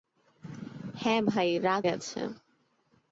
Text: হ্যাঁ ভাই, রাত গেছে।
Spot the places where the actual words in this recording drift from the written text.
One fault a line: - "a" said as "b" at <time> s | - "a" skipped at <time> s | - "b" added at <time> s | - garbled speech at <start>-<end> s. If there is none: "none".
none